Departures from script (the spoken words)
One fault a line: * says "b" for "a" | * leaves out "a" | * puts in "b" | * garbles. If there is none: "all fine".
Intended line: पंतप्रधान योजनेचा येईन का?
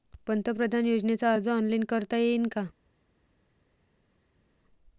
* puts in "अर्ज ऑनलाईन करता"